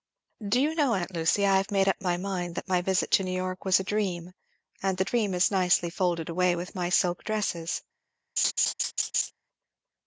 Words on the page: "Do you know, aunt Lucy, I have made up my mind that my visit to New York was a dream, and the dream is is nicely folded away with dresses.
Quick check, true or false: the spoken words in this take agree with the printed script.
false